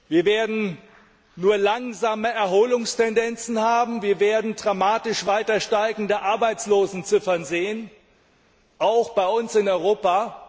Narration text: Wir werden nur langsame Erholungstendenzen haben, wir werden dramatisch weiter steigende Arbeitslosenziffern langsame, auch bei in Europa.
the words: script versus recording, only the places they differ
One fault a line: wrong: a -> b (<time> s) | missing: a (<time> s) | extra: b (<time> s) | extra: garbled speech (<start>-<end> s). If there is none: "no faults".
wrong: langsame -> sehen (7.5 s)
extra: uns (9.3 s)